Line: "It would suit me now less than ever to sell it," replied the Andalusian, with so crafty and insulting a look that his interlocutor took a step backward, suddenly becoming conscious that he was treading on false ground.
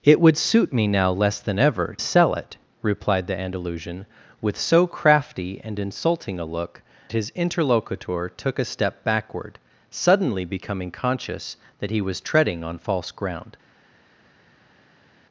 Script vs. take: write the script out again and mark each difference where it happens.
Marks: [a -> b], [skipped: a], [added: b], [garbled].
"It would suit me now less than ever [skipped: to] sell it," replied the Andalusian, with so crafty and insulting a look [skipped: that] his interlocutor took a step backward, suddenly becoming conscious that he was treading on false ground.